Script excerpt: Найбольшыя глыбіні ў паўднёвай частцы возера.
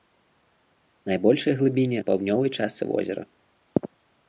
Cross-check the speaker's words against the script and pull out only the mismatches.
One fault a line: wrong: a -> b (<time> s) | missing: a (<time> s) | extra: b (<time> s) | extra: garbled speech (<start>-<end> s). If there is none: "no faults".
no faults